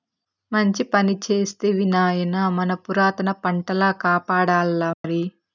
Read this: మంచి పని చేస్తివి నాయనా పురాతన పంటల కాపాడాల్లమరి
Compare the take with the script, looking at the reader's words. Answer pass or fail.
fail